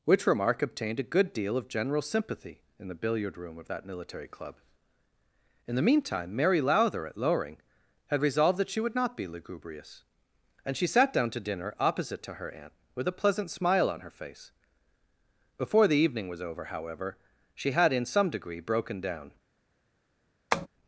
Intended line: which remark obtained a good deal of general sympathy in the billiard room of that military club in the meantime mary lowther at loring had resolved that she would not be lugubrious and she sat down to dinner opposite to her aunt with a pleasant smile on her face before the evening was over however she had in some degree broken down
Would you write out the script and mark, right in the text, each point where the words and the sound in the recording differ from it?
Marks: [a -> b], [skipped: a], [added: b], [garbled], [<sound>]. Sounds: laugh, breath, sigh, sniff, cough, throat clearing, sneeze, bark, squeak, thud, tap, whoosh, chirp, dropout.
which remark obtained a good deal of general sympathy in the billiard room of that military club in the meantime mary lowther at loring had resolved that she would not be lugubrious and she sat down to dinner opposite to her aunt with a pleasant smile on her face before the evening was over however she had in some degree broken down [tap]